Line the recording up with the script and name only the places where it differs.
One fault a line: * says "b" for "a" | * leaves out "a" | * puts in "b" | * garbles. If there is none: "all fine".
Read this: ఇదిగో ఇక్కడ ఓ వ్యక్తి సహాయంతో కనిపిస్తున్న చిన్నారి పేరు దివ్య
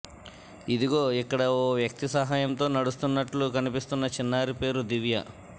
* puts in "నడుస్తున్నట్లు"